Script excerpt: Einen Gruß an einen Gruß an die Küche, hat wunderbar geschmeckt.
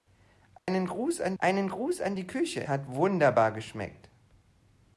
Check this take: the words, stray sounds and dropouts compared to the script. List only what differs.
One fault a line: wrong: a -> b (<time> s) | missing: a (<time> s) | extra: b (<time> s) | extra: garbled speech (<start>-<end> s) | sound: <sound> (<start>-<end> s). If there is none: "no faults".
sound: dropout (0.6-0.7 s)